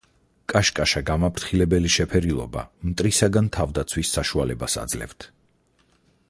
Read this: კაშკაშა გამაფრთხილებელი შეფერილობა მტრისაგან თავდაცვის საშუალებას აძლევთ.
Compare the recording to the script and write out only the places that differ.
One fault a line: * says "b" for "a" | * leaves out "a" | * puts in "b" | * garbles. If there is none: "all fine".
all fine